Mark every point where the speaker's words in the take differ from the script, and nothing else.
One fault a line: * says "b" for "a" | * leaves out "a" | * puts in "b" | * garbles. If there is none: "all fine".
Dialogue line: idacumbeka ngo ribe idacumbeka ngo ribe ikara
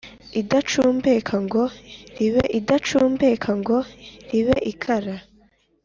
all fine